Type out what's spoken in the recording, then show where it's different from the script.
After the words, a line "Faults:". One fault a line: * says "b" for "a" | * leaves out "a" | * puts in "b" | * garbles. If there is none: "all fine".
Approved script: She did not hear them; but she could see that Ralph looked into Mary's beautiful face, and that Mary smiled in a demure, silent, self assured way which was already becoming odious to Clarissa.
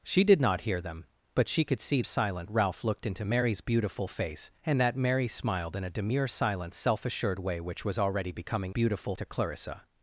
She did not hear them; but she could see silent Ralph looked into Mary's beautiful face, and that Mary smiled in a demure, silent, self assured way which was already becoming beautiful to Clarissa.
Faults:
* says "silent" for "that"
* says "beautiful" for "odious"